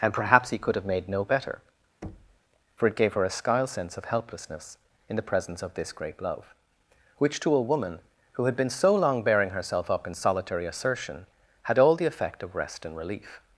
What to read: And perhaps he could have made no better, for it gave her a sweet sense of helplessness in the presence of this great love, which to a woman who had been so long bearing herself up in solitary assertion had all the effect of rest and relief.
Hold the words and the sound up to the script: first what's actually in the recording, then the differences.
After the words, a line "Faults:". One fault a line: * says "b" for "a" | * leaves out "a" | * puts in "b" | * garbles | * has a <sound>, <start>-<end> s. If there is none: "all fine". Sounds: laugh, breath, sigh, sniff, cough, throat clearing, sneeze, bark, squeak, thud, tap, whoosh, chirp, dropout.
And perhaps he could have made no better, for it gave her a skyle sense of helplessness in the presence of this great love, which to a woman who had been so long bearing herself up in solitary assertion had all the effect of rest and relief.
Faults:
* has a thud, 2.0-2.4 s
* says "skyle" for "sweet"